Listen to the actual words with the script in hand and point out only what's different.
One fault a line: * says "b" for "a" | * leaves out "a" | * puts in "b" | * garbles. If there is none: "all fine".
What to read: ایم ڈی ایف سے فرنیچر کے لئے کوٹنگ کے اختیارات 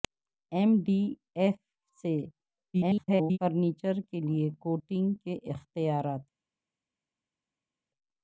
* garbles